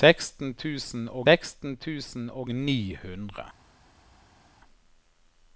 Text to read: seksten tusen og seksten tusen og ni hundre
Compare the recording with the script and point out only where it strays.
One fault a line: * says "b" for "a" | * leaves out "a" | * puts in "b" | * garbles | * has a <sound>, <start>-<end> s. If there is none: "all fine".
all fine